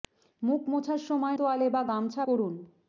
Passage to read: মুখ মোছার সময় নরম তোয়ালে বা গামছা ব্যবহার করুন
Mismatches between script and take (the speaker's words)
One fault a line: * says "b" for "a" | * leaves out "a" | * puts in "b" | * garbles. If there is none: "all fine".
* leaves out "নরম"
* leaves out "ব্যবহার"